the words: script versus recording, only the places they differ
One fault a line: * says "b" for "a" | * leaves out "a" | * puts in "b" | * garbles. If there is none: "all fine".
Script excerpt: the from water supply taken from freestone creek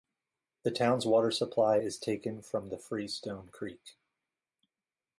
* says "town's" for "from"
* puts in "is"
* puts in "the"